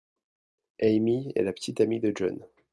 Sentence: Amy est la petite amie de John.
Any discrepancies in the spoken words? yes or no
no